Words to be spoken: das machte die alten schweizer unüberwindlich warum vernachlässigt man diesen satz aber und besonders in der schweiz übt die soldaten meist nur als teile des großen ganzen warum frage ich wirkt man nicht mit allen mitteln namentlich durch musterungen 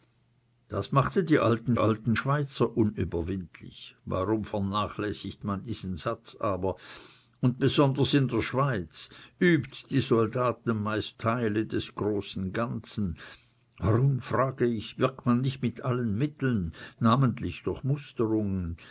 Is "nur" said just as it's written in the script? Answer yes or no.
no